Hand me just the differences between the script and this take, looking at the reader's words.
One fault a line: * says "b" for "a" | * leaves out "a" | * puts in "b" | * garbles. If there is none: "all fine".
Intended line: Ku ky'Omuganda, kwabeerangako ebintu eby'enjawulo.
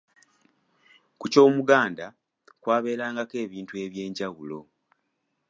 all fine